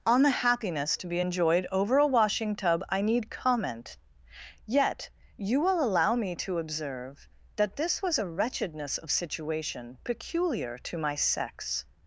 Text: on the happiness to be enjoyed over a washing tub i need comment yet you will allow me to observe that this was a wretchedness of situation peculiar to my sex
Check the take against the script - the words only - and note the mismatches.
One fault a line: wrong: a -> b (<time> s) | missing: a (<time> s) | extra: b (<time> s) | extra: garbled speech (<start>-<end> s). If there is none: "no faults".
no faults